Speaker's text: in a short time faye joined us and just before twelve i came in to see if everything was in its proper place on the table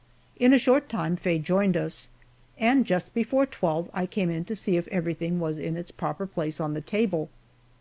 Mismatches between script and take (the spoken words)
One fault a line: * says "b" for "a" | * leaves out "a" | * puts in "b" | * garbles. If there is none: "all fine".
all fine